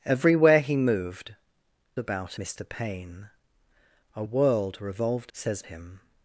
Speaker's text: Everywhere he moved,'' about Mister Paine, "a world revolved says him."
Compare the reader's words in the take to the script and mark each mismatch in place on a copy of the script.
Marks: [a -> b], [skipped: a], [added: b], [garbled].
Everywhere he moved,'' about Mister Paine, "a world revolved says him."